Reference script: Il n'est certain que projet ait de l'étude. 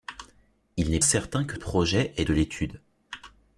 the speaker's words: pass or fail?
pass